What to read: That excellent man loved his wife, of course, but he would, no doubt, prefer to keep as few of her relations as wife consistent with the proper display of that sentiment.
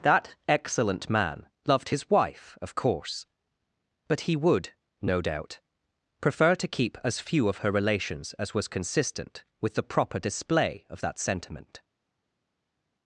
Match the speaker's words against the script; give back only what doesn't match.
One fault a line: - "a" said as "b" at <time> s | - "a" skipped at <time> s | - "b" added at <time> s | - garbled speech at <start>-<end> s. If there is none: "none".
- "wife" said as "was" at 8.5 s